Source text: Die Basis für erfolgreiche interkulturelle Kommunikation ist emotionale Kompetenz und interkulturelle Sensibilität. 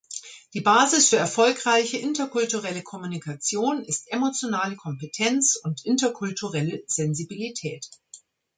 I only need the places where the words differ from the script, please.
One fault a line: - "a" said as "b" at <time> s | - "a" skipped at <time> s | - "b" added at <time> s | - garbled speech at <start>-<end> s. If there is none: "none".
none